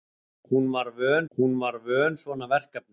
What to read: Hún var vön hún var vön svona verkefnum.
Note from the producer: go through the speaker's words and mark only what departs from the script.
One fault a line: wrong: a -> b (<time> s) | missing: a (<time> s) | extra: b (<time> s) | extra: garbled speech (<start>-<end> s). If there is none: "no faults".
no faults